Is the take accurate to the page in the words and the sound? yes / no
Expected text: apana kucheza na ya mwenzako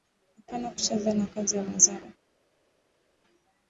no